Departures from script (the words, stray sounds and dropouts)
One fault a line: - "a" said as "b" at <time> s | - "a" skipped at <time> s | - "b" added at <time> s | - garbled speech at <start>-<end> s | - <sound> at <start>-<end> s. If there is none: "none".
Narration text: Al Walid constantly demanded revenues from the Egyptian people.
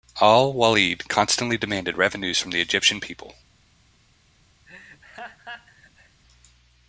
- laugh at 4.7-6.2 s